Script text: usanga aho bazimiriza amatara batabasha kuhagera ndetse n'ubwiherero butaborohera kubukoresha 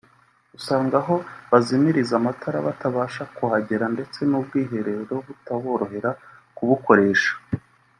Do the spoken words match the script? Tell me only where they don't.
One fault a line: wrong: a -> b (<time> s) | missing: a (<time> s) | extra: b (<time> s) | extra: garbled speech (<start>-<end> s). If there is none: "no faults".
no faults